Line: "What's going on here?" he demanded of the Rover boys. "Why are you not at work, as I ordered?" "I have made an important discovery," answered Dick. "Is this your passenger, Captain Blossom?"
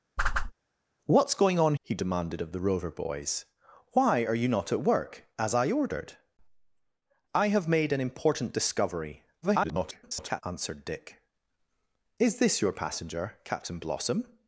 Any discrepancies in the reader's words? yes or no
yes